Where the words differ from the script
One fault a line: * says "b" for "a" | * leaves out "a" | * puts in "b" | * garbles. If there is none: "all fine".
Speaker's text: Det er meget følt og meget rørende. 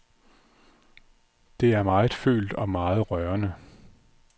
all fine